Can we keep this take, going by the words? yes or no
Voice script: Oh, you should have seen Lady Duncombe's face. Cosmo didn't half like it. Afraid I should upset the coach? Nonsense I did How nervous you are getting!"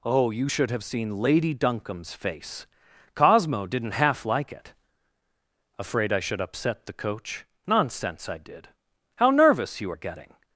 yes